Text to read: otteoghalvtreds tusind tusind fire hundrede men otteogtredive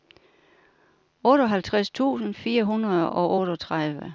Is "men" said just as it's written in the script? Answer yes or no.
no